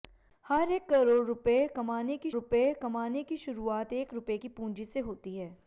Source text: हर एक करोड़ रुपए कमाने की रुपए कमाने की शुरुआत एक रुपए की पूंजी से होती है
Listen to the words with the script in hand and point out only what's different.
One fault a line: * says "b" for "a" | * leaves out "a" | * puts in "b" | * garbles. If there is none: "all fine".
all fine